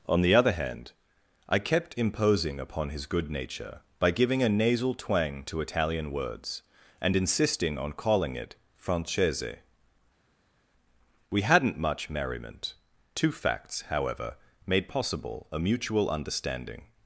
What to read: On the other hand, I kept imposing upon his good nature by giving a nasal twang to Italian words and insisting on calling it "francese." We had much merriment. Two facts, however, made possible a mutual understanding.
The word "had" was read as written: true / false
false